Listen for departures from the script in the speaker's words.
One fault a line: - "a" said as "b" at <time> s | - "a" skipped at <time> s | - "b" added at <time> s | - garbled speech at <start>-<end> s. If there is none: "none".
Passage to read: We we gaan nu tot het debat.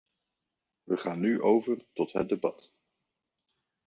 - "we" skipped at 1.0 s
- "over" added at 1.4 s